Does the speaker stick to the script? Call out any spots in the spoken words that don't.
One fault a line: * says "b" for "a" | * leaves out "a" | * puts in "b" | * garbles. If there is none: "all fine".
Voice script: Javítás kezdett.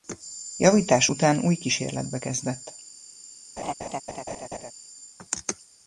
* puts in "után új kísérletbe"